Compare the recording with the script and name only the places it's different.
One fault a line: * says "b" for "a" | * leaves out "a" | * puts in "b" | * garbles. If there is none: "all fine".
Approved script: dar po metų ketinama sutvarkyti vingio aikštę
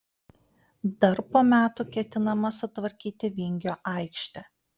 all fine